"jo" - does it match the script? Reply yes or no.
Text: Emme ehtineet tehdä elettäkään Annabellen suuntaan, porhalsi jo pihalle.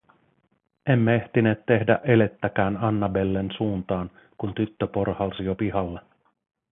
yes